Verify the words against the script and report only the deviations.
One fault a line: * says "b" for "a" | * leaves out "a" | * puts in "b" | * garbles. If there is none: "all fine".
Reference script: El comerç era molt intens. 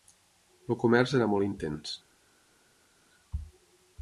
all fine